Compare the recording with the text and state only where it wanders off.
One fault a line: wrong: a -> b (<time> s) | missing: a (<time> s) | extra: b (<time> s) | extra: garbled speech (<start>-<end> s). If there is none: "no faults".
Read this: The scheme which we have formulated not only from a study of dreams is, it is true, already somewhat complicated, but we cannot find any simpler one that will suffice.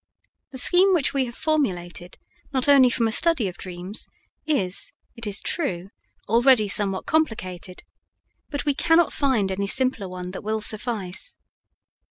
no faults